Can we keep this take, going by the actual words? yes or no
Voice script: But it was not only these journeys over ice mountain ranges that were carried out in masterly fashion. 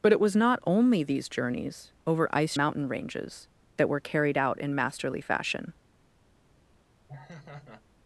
yes